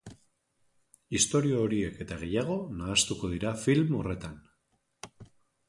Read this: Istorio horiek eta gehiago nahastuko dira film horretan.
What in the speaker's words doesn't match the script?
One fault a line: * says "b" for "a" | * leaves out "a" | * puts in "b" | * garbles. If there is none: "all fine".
all fine